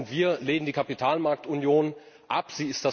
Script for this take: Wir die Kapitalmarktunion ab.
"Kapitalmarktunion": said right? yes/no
yes